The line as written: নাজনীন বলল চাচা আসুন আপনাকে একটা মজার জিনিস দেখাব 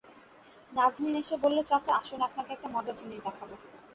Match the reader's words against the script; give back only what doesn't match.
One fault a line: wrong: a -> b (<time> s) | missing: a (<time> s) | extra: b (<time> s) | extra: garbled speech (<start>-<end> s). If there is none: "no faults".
extra: এসে (1.1 s)